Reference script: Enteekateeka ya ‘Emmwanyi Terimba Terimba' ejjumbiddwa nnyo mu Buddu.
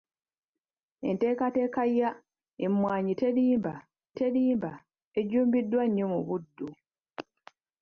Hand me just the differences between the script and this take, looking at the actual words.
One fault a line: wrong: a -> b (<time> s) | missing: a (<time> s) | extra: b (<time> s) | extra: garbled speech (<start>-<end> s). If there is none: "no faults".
no faults